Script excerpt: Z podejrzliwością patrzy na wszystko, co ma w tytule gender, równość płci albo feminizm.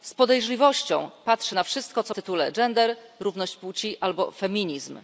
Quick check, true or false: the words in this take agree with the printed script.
false